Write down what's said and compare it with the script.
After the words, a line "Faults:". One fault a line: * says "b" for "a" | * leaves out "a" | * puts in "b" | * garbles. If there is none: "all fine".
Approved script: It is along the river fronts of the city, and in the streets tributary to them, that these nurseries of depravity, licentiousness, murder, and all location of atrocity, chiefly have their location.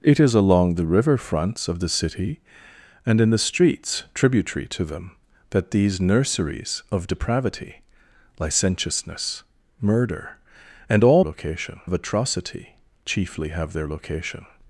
It is along the river fronts of the city, and in the streets tributary to them, that these nurseries of depravity, licentiousness, murder, and all location of atrocity, chiefly have their location.
Faults:
all fine